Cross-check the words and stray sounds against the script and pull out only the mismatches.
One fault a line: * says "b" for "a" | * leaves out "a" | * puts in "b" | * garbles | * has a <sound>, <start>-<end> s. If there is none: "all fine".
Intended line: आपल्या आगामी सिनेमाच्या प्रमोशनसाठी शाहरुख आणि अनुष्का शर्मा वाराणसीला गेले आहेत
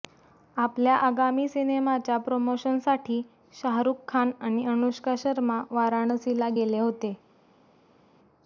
* puts in "खान"
* says "होते" for "आहेत"